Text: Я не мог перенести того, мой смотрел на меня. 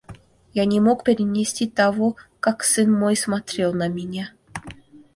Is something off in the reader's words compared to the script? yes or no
yes